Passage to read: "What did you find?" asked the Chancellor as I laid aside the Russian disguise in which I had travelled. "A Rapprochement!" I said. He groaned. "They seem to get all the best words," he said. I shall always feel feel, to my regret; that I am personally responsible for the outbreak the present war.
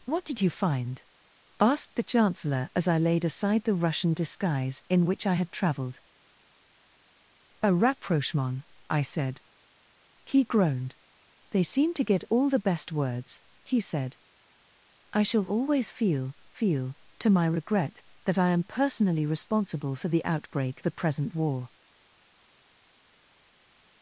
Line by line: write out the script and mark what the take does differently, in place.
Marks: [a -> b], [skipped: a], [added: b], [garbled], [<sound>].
"What did you find?" asked the Chancellor as I laid aside the Russian disguise in which I had travelled. "A Rapprochement!" I said. He groaned. "They seem to get all the best words," he said. I shall always feel feel, to my regret; that I am personally responsible for the outbreak the present war.